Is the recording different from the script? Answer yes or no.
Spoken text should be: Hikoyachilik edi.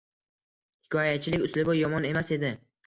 yes